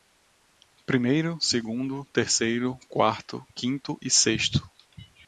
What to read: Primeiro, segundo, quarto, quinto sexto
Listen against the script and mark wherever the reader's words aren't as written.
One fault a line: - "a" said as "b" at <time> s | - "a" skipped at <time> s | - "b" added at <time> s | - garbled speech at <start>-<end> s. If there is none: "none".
- "terceiro" added at 2.0 s
- "e" added at 4.0 s